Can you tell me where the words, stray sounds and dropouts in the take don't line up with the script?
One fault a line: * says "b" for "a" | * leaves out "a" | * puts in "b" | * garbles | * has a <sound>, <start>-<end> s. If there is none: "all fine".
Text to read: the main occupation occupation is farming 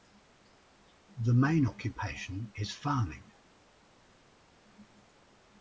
* leaves out "occupation"